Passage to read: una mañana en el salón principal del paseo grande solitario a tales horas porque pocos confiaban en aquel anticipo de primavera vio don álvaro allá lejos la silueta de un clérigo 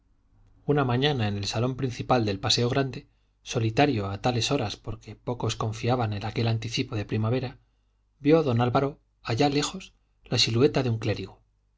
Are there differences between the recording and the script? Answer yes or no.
no